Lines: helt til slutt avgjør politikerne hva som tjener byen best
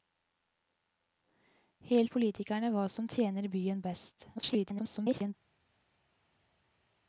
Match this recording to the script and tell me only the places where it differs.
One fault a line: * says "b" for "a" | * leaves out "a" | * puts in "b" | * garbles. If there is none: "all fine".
* leaves out "til slutt avgjør"
* garbles